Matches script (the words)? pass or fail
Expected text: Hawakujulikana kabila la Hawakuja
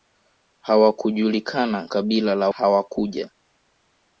pass